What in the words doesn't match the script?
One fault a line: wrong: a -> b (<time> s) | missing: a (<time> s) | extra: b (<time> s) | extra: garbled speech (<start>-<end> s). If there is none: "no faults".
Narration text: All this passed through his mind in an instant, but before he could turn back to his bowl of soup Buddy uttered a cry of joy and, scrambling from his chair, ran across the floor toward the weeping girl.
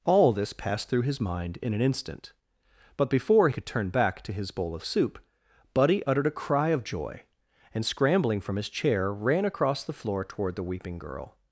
missing: he (3.5 s)